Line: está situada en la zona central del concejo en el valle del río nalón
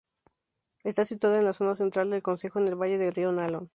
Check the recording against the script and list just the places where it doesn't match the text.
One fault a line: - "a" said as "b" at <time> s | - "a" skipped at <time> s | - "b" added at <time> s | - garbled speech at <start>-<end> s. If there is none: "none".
none